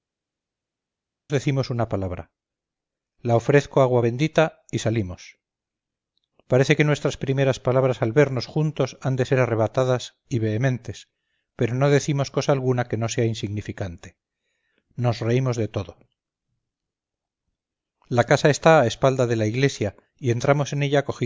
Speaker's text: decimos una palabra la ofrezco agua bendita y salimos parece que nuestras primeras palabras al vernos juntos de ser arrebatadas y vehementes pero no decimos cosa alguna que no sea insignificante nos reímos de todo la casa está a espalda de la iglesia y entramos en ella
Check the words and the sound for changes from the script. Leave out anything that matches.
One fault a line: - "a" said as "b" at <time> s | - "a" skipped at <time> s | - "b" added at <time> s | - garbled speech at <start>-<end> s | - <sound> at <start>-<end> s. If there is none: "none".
- "han" added at 9.0 s